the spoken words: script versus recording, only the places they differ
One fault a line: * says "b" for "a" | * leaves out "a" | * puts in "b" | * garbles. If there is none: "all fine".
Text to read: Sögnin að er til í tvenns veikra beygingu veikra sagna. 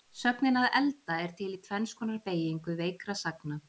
* puts in "elda"
* says "konar" for "veikra"